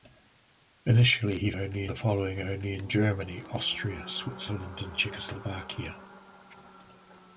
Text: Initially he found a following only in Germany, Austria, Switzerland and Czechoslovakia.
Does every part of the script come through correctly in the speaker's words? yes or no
no